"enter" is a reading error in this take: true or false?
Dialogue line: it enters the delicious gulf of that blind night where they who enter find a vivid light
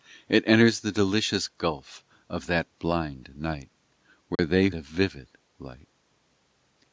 true